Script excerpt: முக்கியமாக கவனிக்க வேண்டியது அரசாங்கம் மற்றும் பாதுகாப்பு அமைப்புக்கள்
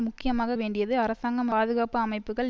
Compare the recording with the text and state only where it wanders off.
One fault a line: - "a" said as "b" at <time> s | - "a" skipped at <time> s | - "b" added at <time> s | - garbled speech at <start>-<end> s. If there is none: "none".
- "கவனிக்க" skipped at 0.6 s
- "மற்றும்" skipped at 1.5 s